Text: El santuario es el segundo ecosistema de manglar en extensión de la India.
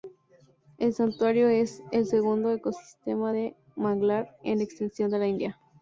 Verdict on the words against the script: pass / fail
pass